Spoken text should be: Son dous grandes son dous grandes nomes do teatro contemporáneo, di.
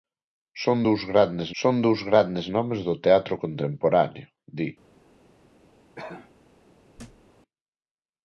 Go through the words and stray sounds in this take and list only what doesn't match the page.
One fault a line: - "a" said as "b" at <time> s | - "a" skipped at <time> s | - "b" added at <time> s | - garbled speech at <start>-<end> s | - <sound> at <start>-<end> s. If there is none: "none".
- cough at 6.0-6.3 s
- thud at 7.0-7.3 s